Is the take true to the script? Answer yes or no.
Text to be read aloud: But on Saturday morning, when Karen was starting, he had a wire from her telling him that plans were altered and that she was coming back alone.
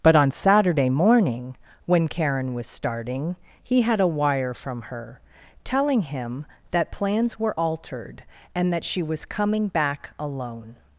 yes